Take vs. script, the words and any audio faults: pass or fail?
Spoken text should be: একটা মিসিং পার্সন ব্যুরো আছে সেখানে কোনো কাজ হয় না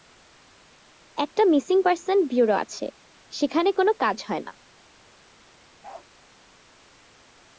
fail